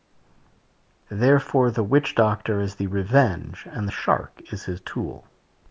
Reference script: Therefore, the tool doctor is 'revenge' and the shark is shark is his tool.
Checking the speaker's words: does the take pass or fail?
fail